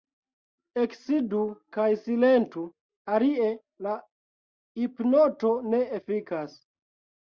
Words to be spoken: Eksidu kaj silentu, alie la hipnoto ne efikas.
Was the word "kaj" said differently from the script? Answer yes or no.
no